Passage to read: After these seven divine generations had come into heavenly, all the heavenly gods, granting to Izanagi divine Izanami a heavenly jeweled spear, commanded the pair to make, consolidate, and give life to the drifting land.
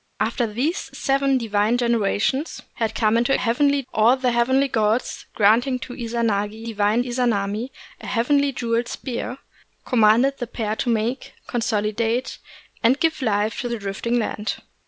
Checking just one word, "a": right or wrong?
right